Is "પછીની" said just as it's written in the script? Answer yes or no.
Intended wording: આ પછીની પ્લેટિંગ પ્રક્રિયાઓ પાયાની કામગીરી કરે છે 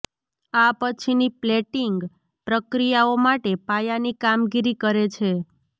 yes